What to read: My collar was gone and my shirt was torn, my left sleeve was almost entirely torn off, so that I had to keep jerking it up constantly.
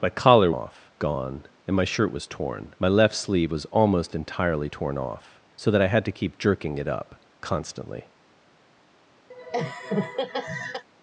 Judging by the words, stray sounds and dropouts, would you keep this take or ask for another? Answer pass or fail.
fail